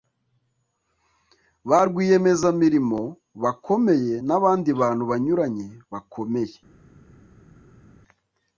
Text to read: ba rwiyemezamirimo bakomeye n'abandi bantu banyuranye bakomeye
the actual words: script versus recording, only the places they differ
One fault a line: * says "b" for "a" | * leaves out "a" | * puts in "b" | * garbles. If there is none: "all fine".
all fine